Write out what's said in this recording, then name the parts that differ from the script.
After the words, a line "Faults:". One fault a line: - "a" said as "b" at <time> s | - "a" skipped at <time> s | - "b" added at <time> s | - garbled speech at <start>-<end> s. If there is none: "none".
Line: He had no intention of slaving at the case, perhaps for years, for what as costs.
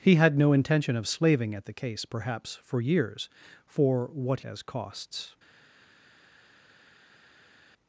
He had no intention of slaving at the case, perhaps for years, for what as costs.
Faults:
none